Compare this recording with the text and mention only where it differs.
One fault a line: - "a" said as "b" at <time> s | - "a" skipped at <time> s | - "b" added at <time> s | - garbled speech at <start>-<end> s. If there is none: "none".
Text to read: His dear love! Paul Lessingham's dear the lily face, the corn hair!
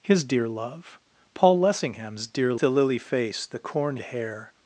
none